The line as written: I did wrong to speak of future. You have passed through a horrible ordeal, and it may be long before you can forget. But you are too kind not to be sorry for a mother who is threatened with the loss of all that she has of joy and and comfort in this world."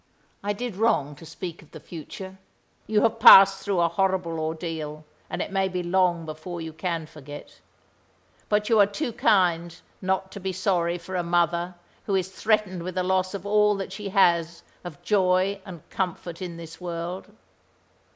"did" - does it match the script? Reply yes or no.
yes